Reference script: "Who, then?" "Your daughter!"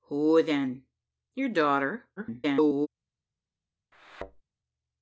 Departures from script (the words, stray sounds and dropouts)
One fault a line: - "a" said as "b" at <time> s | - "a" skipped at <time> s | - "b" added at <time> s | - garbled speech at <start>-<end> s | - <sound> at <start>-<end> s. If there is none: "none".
- garbled speech at 2.2-2.9 s
- thud at 3.9-4.4 s